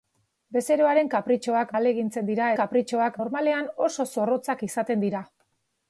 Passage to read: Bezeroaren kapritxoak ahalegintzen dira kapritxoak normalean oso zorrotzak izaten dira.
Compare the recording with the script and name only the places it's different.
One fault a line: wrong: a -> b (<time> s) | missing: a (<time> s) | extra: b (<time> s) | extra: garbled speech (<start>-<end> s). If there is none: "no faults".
no faults